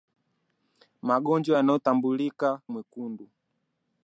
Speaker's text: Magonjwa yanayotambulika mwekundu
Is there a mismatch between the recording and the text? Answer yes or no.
no